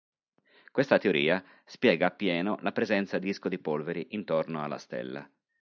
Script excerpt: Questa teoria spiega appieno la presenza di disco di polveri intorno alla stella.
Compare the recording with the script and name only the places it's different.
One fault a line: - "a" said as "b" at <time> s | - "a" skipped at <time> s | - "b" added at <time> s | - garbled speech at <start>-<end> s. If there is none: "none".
none